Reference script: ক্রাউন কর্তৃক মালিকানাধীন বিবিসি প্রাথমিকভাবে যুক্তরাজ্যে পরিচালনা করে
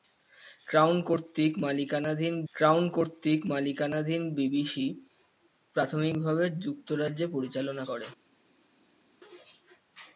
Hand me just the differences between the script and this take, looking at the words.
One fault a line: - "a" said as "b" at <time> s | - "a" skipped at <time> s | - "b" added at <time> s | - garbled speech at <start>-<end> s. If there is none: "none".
- "ক্রাউন কর্তৃক মালিকানাধীন" added at 2.5 s